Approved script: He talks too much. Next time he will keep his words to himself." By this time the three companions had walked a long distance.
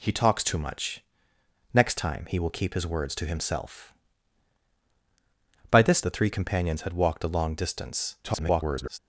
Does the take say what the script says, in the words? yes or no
no